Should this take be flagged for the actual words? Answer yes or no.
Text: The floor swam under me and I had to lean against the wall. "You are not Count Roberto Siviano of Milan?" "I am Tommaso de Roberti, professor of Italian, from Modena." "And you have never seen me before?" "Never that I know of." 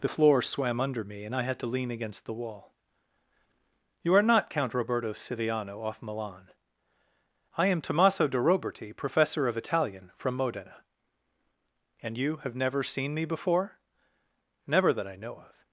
yes